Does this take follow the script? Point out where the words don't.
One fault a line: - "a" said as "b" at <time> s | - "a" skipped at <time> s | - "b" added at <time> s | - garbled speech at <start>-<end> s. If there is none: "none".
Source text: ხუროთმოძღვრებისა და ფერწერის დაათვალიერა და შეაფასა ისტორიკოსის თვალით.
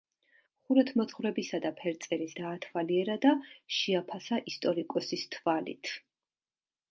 none